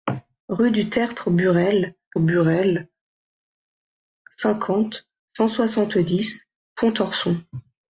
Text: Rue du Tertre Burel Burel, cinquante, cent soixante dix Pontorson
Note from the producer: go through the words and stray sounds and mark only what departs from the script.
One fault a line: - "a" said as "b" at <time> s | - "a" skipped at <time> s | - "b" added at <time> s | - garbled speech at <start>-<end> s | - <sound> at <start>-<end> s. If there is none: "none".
none